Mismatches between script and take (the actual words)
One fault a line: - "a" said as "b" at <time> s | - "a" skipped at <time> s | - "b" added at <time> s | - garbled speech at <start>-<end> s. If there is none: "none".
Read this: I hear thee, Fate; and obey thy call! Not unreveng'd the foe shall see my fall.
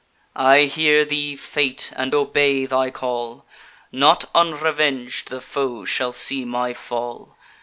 none